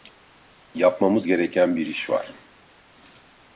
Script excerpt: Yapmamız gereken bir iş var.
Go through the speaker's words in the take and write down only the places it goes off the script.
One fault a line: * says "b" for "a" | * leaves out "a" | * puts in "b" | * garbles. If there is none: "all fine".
all fine